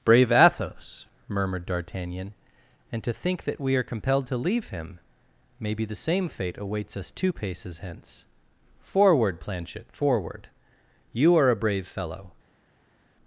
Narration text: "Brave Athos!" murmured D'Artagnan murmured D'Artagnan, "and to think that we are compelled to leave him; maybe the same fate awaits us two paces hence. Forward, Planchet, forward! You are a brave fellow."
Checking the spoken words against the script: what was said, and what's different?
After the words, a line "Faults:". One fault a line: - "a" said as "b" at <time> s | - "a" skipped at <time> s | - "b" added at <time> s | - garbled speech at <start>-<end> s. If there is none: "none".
"Brave Athos!" murmured D'Artagnan, "and to think that we are compelled to leave him; maybe the same fate awaits us two paces hence. Forward, Planchet, forward! You are a brave fellow."
Faults:
- "murmured D'Artagnan" skipped at 2.3 s